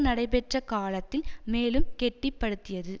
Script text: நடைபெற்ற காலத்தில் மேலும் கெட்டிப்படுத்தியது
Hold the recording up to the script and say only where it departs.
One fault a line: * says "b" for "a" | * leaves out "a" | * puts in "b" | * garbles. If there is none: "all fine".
all fine